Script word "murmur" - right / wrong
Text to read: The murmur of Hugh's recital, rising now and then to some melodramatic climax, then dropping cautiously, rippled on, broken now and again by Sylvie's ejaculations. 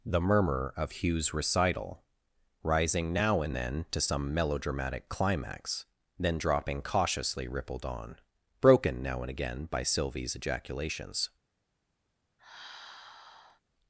right